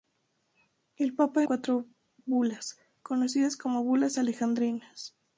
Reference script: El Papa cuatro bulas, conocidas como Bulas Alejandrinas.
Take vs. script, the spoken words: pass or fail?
pass